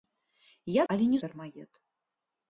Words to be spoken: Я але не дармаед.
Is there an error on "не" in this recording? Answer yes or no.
no